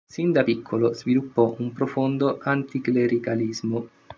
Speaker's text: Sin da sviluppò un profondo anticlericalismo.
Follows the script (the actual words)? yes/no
no